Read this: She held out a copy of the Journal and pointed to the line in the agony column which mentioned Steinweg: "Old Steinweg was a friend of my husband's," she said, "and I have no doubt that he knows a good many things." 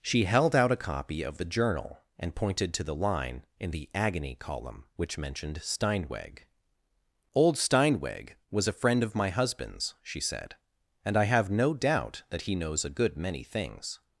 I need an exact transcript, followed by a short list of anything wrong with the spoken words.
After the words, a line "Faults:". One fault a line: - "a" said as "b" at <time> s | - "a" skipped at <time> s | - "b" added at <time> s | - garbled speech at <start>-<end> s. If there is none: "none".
She held out a copy of the Journal and pointed to the line in the agony column which mentioned Steinweg: "Old Steinweg was a friend of my husband's," she said, "and I have no doubt that he knows a good many things."
Faults:
none